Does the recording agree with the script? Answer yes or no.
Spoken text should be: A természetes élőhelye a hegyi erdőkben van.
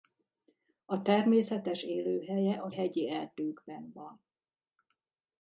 yes